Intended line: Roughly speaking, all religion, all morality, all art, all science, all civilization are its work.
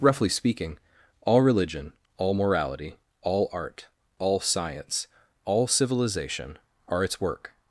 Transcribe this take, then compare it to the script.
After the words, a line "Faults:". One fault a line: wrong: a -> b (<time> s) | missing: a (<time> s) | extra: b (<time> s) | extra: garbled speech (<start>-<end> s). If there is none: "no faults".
Roughly speaking, all religion, all morality, all art, all science, all civilization are its work.
Faults:
no faults